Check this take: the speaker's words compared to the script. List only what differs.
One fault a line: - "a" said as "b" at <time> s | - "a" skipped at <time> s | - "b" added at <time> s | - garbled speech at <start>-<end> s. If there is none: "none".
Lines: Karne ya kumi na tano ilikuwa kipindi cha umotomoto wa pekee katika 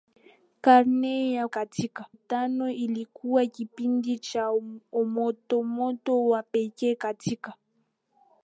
- "kumi" said as "katika" at 1.5 s